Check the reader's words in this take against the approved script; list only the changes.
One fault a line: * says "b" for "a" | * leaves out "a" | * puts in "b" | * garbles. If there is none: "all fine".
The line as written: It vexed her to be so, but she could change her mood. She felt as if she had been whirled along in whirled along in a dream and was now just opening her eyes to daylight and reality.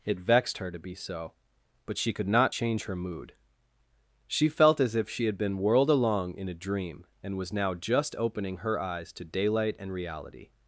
* puts in "not"
* leaves out "whirled along in"